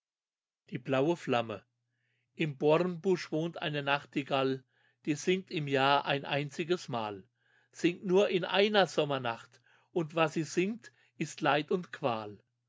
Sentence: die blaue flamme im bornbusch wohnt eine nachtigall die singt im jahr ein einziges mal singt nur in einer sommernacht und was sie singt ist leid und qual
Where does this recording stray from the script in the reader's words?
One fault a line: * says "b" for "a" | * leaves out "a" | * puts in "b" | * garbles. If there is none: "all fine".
all fine